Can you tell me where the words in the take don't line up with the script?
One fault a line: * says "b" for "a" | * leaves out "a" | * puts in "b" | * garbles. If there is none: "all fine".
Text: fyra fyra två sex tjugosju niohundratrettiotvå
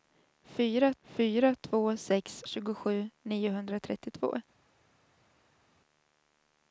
all fine